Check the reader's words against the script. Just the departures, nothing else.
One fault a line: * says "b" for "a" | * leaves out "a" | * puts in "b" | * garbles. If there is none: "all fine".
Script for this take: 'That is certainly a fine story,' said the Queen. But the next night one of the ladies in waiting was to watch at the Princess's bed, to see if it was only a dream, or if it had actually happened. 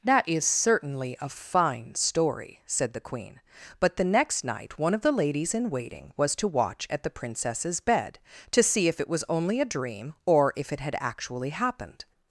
all fine